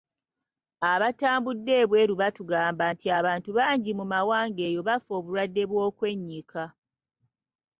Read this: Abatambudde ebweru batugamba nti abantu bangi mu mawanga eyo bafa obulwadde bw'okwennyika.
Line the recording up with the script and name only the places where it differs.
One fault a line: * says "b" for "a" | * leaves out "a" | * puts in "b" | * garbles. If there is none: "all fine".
all fine